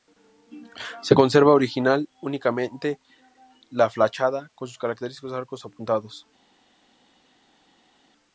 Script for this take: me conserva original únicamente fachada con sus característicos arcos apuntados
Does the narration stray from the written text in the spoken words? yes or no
yes